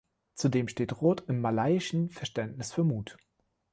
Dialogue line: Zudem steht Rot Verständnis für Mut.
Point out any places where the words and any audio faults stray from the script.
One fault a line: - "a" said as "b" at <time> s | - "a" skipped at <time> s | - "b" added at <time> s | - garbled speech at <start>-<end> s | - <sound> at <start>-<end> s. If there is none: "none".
- "im malaiischen" added at 1.3 s